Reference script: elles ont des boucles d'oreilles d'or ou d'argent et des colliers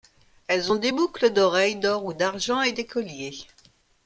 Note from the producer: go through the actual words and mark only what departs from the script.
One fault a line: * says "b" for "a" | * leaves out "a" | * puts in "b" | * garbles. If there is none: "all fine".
all fine